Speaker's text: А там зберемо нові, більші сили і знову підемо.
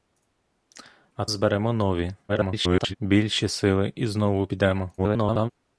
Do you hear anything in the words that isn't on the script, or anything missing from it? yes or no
yes